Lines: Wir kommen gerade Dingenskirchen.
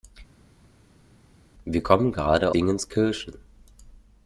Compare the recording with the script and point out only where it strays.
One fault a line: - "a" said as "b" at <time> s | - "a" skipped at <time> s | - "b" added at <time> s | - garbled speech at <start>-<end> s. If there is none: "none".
none